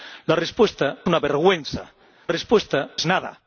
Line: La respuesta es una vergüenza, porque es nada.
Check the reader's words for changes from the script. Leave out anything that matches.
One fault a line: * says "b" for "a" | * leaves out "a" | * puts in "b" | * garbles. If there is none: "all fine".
* leaves out "es"
* says "respuesta" for "porque"